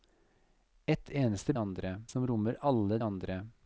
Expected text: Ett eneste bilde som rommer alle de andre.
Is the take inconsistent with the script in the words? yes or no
yes